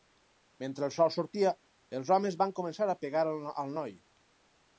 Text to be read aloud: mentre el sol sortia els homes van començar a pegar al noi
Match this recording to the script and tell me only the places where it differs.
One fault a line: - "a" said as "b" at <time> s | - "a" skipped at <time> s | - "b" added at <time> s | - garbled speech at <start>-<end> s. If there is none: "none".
none